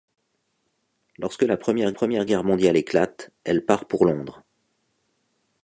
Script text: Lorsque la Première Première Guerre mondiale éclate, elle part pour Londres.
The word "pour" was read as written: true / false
true